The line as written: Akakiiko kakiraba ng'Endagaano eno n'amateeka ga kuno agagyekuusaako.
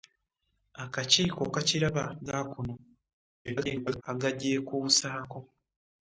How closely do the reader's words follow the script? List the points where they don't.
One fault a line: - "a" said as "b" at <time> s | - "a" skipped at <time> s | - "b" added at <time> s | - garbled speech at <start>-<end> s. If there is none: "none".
- "ng'Endagaano eno n'amateeka" skipped at 2.0 s
- garbled speech at 3.4-4.0 s